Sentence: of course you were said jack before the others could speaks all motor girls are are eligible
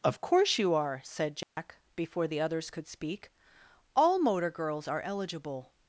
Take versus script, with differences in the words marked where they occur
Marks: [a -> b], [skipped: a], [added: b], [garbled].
of course you [were -> are] said jack before the others could [speaks -> speak] all motor girls are [skipped: are] eligible